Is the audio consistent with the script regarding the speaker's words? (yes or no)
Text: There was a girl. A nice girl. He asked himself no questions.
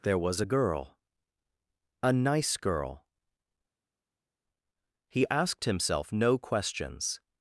yes